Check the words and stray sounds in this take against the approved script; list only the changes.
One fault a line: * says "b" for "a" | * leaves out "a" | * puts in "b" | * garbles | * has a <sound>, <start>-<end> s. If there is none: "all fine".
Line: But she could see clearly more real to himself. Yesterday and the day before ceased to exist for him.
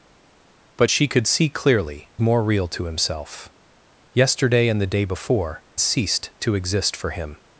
all fine